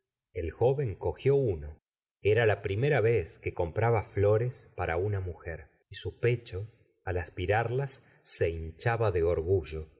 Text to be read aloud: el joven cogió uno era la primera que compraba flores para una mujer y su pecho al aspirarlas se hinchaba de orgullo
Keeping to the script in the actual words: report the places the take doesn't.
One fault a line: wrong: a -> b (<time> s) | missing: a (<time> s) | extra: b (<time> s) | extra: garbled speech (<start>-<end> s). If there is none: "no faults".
extra: vez (3.0 s)